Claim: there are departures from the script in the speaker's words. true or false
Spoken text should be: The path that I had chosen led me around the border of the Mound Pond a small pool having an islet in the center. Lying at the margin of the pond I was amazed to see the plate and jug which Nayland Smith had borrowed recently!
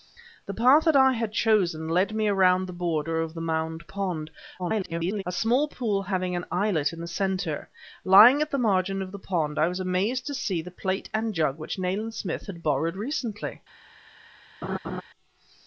true